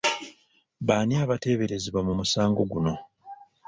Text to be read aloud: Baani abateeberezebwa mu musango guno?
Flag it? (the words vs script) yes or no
no